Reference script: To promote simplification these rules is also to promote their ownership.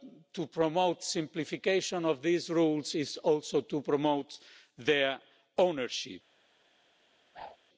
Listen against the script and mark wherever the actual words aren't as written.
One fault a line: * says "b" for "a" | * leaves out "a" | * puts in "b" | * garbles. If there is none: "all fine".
* puts in "of"